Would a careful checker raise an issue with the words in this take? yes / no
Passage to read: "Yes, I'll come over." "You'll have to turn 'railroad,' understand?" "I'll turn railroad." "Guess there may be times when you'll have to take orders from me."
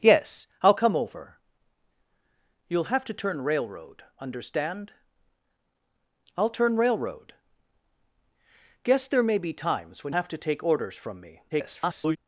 yes